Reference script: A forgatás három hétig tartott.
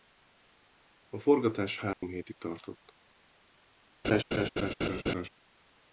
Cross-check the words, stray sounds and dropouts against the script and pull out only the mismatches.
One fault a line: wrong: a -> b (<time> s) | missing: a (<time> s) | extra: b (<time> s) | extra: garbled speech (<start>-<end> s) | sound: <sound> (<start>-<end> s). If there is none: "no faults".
sound: dropout (1.9-2.0 s)
sound: laugh (4.0-5.3 s)